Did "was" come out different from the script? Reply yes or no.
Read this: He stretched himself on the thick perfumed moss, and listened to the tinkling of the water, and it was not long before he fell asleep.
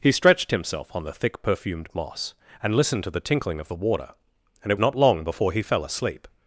yes